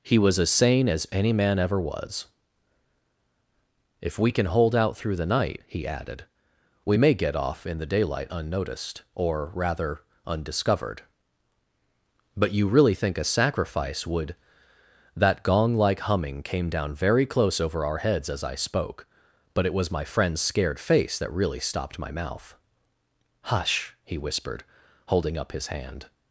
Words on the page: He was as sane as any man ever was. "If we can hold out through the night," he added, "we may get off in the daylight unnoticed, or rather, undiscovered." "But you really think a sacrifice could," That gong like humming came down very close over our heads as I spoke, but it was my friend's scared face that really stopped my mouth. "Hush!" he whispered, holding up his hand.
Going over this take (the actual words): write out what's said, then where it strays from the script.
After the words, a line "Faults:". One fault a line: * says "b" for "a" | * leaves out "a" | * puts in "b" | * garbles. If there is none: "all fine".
He was as sane as any man ever was. "If we can hold out through the night," he added, "we may get off in the daylight unnoticed, or rather, undiscovered." "But you really think a sacrifice would," That gong like humming came down very close over our heads as I spoke, but it was my friend's scared face that really stopped my mouth. "Hush!" he whispered, holding up his hand.
Faults:
* says "would" for "could"